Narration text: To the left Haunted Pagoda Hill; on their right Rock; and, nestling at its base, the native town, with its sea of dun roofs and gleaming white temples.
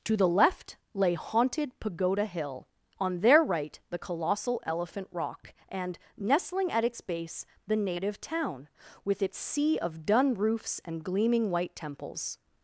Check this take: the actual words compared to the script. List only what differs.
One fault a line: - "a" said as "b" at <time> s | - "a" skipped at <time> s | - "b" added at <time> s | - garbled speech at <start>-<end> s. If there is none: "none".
- "lay" added at 0.9 s
- "the colossal Elephant" added at 3.9 s